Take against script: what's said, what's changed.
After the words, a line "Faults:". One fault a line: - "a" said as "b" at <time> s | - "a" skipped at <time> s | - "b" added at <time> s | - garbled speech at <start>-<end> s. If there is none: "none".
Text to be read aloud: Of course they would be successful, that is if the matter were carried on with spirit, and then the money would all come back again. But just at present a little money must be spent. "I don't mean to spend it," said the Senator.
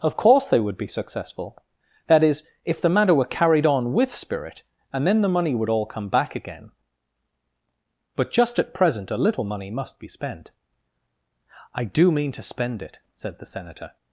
Of course they would be successful, that is if the matter were carried on with spirit, and then the money would all come back again. But just at present a little money must be spent. "I do mean to spend it," said the Senator.
Faults:
- "don't" said as "do" at 11.8 s